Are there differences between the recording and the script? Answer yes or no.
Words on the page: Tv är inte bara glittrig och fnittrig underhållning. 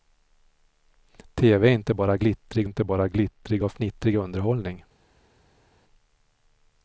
yes